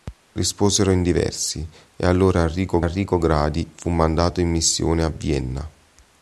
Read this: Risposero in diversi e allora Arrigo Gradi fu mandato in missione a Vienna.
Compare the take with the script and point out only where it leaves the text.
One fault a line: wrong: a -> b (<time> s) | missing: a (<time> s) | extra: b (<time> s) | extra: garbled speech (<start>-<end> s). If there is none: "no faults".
extra: Arrigo (2.8 s)